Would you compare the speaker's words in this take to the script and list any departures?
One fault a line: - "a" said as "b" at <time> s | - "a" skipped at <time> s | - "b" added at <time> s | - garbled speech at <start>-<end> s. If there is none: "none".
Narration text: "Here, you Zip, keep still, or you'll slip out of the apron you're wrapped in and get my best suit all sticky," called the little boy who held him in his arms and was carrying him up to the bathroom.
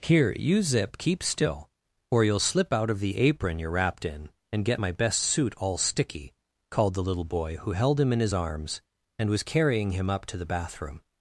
none